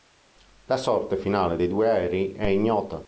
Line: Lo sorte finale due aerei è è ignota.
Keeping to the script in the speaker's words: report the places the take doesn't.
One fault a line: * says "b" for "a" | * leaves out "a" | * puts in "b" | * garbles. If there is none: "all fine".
* says "La" for "Lo"
* puts in "dei"
* leaves out "è"